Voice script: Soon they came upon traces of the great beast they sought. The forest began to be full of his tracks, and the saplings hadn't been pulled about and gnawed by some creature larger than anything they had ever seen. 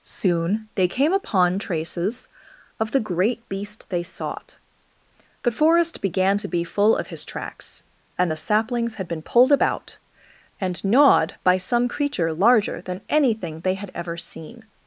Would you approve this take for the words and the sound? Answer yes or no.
no